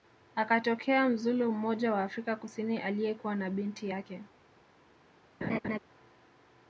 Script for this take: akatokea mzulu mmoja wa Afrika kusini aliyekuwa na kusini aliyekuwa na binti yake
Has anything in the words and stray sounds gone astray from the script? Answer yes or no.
yes